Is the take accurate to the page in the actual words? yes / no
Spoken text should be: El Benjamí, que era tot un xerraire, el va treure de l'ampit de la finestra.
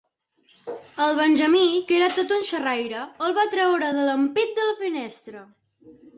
yes